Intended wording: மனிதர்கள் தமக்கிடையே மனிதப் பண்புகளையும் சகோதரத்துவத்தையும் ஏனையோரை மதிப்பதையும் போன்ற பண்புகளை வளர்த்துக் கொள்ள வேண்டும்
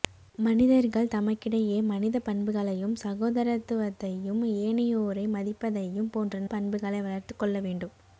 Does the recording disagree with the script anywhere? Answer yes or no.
no